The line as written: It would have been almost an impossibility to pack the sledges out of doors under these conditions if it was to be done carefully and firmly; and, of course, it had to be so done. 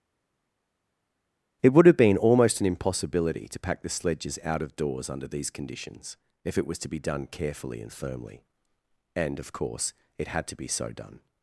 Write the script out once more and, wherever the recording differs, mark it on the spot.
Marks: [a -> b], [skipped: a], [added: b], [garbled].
It would have been almost an impossibility to pack the sledges out of doors under these conditions if it was to be done carefully and firmly; and, of course, it had to be so done.